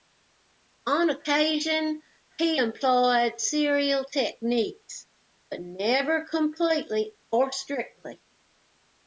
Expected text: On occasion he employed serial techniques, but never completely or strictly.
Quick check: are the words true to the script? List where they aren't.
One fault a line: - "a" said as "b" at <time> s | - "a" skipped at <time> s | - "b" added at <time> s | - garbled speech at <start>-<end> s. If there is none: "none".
none